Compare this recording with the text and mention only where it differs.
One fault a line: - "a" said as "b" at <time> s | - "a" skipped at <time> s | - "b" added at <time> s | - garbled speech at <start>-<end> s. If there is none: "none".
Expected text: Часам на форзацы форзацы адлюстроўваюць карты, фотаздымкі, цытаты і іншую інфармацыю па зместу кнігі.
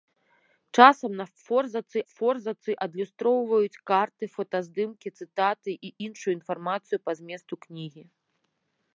none